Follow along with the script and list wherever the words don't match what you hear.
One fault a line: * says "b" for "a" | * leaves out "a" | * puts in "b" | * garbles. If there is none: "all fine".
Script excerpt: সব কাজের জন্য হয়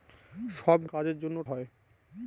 all fine